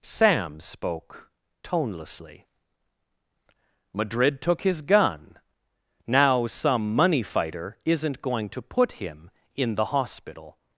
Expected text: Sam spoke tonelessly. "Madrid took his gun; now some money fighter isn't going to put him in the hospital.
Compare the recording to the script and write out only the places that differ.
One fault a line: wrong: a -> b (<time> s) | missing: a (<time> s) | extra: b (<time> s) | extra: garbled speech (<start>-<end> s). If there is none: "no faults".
no faults